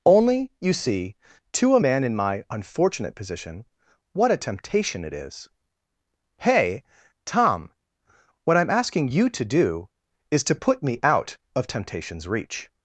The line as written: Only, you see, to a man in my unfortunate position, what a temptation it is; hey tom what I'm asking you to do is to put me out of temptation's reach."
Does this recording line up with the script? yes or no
yes